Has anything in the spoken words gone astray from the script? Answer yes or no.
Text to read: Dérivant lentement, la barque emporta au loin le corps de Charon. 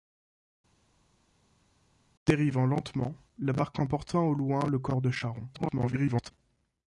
yes